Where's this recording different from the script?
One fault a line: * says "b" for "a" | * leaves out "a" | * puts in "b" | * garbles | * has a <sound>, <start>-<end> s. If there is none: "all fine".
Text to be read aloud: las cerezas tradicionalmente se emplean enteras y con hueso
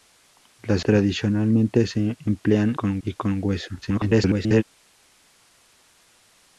* leaves out "cerezas"
* says "con" for "enteras"
* garbles